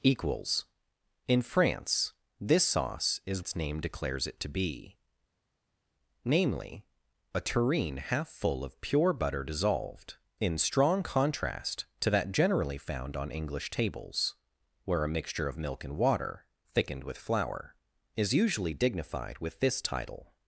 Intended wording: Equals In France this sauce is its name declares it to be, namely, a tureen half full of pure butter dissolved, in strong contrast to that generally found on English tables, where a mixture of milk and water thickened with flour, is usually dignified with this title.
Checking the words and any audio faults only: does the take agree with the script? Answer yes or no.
yes